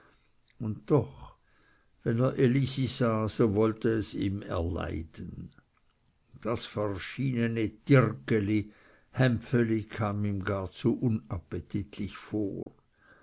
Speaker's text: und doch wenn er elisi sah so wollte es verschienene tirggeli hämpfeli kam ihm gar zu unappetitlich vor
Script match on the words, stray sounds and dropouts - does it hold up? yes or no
no